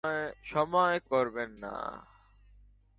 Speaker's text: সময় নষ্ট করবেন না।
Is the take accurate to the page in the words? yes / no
no